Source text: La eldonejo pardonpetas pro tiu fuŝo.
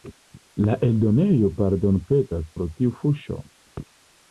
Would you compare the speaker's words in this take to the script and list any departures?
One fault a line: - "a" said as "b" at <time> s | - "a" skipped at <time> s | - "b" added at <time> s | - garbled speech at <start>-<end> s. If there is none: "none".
none